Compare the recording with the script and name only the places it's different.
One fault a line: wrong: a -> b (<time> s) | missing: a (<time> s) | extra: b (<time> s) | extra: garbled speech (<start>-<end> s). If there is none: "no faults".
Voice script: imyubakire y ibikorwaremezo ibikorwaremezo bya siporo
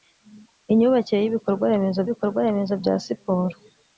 no faults